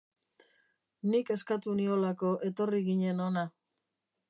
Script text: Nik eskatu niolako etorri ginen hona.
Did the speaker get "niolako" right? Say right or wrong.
right